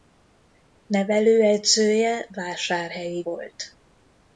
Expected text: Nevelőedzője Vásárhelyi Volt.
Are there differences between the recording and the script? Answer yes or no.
no